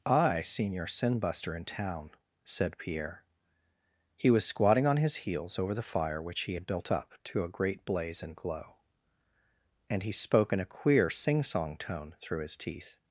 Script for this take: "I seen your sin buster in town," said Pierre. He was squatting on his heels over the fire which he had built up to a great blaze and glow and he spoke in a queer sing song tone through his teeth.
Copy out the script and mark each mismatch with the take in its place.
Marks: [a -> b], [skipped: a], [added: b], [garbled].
"I seen your sin buster in town," said Pierre. He was squatting on his heels over the fire which he had built up to a great blaze and glow and he spoke in a queer sing song tone through his teeth.